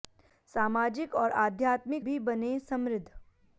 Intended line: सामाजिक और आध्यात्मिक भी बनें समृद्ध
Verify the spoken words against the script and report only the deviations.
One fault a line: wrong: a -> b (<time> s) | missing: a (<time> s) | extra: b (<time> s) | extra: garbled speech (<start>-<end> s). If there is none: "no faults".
no faults